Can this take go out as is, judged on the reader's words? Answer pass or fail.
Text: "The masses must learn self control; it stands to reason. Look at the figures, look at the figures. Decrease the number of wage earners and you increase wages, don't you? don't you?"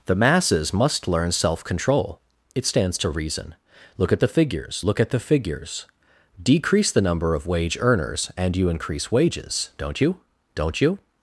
pass